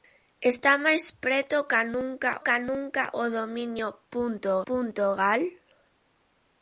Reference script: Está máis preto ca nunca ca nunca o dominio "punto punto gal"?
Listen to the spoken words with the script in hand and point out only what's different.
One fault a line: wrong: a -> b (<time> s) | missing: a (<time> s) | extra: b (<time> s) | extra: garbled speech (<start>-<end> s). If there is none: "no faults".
no faults